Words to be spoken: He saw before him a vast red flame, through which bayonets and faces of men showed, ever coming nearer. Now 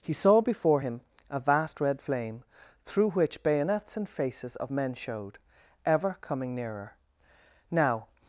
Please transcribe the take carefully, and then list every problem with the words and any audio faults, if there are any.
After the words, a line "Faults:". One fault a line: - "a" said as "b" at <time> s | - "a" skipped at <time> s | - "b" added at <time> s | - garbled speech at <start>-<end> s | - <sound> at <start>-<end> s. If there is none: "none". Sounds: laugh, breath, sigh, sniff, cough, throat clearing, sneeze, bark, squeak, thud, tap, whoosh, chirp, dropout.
He saw before him a vast red flame, through which bayonets and faces of men showed, ever coming nearer. Now
Faults:
none